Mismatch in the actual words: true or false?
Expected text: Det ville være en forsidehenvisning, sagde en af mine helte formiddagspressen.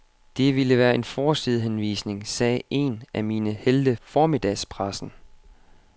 false